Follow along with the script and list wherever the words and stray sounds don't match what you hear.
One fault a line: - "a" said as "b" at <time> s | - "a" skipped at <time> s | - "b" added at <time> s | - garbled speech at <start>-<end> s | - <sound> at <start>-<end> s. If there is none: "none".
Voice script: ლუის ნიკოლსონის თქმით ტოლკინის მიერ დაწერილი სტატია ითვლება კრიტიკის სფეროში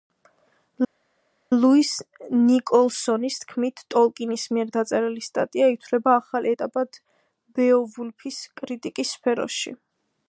- "ახალ ეტაპად ბეოვულფის" added at 6.2 s